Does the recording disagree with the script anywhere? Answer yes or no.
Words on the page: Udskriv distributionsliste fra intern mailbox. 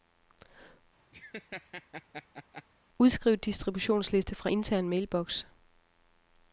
no